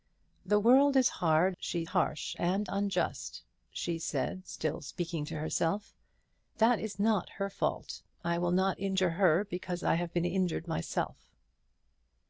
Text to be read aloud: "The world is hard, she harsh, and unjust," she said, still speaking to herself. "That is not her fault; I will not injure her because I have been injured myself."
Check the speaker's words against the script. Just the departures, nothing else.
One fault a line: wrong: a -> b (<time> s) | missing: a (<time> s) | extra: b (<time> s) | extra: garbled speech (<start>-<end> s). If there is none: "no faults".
no faults